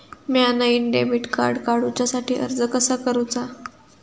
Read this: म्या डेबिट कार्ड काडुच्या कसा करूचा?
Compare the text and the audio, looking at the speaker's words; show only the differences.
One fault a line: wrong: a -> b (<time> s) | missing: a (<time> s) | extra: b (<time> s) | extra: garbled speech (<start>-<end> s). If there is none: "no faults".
extra: नईन (0.5 s)
extra: साठी अर्ज (2.0 s)